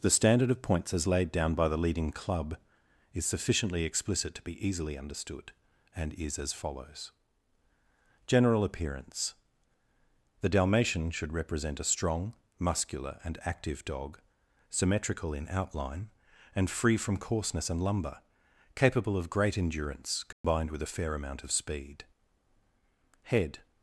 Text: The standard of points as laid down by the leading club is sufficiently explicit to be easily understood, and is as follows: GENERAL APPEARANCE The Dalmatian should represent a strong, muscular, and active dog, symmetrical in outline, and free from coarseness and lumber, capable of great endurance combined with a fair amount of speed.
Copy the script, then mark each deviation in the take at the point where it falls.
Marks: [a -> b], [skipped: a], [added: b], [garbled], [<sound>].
The standard of points as laid down by the leading club is sufficiently explicit to be easily understood, and is as follows: GENERAL APPEARANCE The Dalmatian should represent a strong, muscular, and active dog, symmetrical in outline, and free from coarseness and lumber, capable of great endurance combined [dropout] with a fair amount of speed. [added: HEAD]